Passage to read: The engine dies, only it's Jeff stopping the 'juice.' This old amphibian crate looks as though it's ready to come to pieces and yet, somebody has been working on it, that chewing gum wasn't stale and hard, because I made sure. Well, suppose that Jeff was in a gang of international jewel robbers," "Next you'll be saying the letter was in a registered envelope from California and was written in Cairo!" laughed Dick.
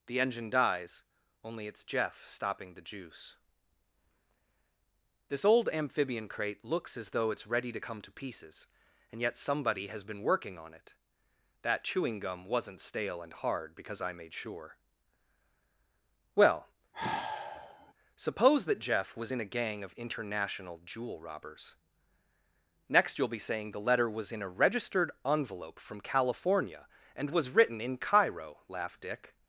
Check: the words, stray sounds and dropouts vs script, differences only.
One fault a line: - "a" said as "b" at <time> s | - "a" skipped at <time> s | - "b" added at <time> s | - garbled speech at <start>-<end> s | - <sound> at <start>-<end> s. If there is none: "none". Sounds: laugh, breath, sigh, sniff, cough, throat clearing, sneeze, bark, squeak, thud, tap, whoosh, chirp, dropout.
- sigh at 16.9-17.9 s